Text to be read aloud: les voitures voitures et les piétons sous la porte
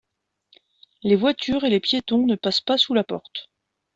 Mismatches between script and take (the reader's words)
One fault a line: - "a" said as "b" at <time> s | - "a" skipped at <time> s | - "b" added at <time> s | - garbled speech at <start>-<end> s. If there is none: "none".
- "voitures" skipped at 1.6 s
- "ne passent pas" added at 2.2 s